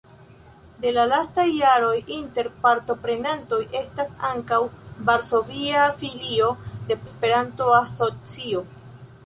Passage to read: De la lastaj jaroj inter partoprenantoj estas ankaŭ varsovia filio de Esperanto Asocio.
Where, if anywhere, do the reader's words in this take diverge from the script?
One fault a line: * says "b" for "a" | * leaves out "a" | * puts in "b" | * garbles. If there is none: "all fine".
all fine